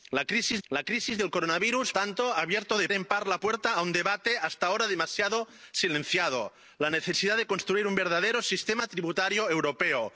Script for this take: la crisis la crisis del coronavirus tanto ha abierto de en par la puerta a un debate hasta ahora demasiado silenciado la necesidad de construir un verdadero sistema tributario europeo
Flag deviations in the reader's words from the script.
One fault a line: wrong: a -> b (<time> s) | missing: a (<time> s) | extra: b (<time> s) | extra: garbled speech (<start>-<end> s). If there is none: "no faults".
no faults